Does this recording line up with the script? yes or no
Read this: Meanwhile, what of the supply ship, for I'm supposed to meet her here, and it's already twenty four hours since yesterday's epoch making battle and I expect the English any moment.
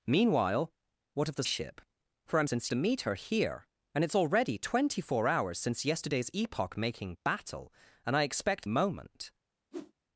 no